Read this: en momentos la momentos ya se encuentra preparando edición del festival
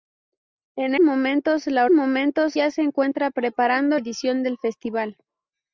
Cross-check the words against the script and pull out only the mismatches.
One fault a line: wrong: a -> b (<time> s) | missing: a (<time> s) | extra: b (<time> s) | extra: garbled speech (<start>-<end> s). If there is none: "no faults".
no faults